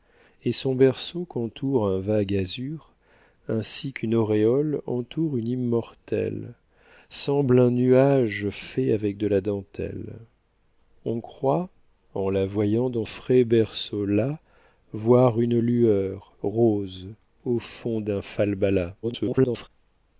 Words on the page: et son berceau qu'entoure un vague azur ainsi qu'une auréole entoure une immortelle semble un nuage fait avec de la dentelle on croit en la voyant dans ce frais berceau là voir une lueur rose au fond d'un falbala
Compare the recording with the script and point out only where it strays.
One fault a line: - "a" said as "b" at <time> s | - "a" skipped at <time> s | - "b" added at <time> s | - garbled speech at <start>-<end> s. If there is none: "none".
- "ce" skipped at 13.1 s
- garbled speech at 19.0-19.7 s